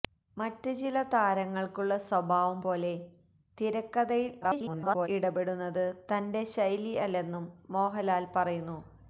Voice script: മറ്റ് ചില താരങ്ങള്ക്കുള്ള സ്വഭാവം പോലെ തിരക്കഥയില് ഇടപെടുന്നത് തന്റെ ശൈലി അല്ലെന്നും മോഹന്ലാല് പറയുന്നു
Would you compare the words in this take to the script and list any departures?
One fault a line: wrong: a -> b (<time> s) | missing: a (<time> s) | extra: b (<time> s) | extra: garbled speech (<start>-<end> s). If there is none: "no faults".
extra: garbled speech (4.4-5.1 s)